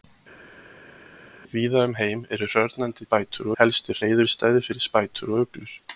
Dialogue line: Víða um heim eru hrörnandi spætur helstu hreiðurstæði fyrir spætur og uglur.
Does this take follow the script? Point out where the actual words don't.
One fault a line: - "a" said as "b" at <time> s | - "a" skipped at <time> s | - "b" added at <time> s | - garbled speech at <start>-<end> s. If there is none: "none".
none